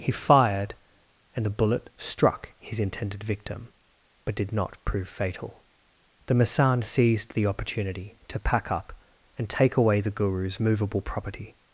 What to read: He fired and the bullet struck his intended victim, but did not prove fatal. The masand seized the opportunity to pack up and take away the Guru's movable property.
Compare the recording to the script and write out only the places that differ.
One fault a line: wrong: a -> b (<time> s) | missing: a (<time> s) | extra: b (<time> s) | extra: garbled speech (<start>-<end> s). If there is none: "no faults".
no faults